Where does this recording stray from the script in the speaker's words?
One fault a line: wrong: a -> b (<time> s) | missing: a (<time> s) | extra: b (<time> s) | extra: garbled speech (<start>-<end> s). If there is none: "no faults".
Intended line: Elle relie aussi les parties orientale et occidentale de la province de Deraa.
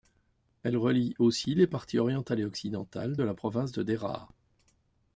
no faults